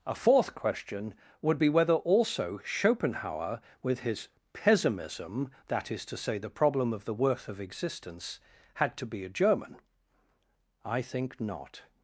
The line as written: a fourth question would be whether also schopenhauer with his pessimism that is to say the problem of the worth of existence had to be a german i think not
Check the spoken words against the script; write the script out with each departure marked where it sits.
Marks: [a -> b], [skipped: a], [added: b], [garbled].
a fourth question would be whether also schopenhauer with his pessimism that is to say the problem of the worth of existence had to be a german i think not